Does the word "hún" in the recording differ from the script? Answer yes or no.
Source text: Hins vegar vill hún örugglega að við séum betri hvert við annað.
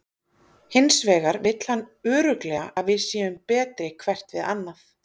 yes